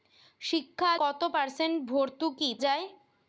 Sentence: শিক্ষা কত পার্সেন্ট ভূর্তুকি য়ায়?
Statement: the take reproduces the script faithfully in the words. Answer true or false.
true